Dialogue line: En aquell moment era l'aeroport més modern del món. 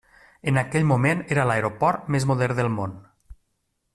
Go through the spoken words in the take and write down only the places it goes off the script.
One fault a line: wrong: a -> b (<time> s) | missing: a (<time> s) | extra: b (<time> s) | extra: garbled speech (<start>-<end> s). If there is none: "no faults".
no faults